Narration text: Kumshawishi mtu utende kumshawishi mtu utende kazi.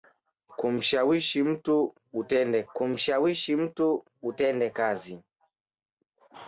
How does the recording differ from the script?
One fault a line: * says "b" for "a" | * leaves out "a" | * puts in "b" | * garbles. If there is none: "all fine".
all fine